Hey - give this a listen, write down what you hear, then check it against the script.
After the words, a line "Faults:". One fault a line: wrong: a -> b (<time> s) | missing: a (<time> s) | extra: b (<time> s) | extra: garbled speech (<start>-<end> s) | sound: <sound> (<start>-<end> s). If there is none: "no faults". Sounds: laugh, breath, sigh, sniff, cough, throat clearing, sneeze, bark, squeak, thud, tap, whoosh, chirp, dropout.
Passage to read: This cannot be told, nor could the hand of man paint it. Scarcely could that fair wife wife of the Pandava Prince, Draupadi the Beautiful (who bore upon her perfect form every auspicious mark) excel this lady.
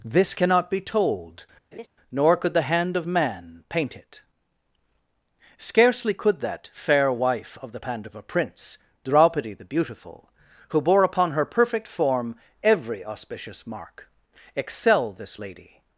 This cannot be told, nor could the hand of man paint it. Scarcely could that fair wife of the Pandava Prince, Draupadi the Beautiful (who bore upon her perfect form every auspicious mark) excel this lady.
Faults:
sound: laugh (1.7-1.9 s)
missing: wife (7.6 s)